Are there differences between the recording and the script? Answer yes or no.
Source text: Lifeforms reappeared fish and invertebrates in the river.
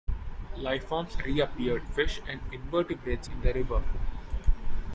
no